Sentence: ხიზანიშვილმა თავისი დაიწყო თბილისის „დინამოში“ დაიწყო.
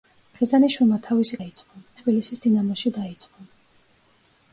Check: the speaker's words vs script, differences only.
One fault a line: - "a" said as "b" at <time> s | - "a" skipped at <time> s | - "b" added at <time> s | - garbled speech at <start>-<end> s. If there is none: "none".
none